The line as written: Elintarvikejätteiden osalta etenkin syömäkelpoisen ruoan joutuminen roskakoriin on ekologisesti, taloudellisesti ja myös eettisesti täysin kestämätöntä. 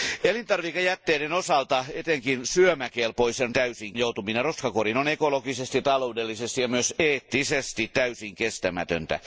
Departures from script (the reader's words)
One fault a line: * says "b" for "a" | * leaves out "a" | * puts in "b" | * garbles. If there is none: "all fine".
* says "täysin" for "ruoan"